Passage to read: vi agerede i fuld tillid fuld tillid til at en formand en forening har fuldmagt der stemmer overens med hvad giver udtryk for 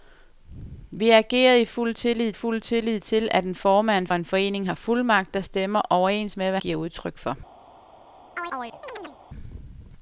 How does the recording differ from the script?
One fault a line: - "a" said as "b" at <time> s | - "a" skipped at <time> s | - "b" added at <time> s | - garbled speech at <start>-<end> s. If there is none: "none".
none